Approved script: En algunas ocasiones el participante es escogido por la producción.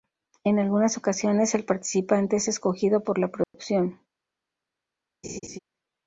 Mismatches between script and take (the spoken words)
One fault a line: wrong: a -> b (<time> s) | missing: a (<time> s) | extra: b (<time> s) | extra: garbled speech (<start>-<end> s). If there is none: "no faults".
no faults